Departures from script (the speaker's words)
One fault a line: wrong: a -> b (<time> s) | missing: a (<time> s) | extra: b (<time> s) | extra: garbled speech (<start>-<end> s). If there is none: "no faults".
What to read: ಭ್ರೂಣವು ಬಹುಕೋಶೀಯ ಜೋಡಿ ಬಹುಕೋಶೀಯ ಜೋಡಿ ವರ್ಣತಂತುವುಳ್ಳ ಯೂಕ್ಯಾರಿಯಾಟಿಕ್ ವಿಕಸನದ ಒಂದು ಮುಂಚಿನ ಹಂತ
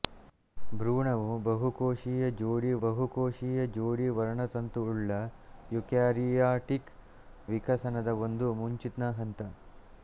no faults